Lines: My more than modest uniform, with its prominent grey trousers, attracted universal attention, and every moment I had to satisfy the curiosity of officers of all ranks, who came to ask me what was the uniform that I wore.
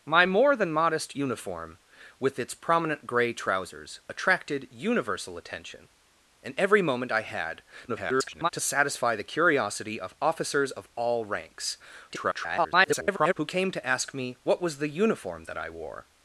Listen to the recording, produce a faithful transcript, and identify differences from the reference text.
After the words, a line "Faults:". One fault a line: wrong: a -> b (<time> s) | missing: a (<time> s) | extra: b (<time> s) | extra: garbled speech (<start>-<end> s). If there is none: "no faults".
My more than modest uniform, with its prominent grey trousers, attracted universal attention, and every moment I had [garbled] to satisfy the curiosity of officers of all ranks, [garbled] who came to ask me what was the uniform that I wore.
Faults:
extra: garbled speech (7.9-8.5 s)
extra: garbled speech (12.1-13.3 s)